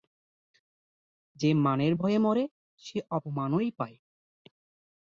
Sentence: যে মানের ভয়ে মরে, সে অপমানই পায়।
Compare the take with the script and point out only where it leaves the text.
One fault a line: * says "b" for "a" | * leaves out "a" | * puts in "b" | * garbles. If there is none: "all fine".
all fine